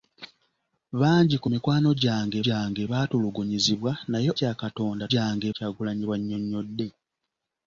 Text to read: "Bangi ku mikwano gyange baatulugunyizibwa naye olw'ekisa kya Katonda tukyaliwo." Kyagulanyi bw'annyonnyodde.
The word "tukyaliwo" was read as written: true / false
false